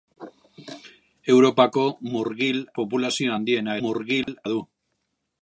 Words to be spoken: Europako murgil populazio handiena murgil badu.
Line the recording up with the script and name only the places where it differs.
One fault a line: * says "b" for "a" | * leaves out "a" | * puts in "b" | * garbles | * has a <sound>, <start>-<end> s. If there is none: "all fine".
* has a dropout, 4.2-4.3 s